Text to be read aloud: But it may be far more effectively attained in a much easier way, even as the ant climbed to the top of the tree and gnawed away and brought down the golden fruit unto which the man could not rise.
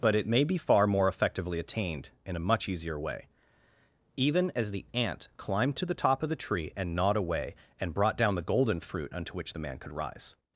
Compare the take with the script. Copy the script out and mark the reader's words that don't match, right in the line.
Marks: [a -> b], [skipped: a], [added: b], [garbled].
But it may be far more effectively attained in a much easier way, even as the ant climbed to the top of the tree and gnawed away and brought down the golden fruit unto which the man could [skipped: not] rise.